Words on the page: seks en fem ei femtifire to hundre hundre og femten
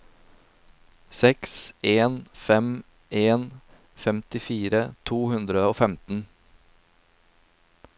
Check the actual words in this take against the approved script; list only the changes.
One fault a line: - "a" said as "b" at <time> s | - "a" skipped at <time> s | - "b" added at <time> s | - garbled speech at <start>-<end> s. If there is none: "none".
- "ei" said as "en" at 3.1 s
- "hundre" skipped at 5.6 s